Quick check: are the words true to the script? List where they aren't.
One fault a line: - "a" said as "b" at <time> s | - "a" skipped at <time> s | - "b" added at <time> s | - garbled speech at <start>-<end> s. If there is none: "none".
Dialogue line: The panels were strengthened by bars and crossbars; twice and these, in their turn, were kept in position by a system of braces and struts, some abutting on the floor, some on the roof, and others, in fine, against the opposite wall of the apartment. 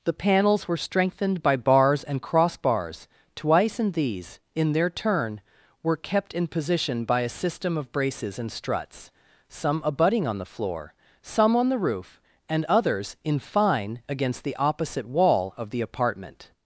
none